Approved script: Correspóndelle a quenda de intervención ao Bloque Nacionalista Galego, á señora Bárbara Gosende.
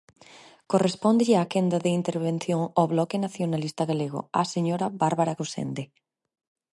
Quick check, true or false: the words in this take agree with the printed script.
true